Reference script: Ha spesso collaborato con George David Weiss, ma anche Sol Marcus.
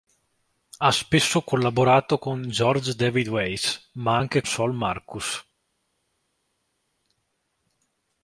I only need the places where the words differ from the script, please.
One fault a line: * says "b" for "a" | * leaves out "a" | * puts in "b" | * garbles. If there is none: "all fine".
all fine